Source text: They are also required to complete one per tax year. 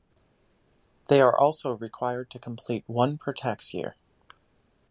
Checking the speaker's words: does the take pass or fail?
pass